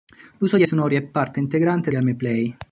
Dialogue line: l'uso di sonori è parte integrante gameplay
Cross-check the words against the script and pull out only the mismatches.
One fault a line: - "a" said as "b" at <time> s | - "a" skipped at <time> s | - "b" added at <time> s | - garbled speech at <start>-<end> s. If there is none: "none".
none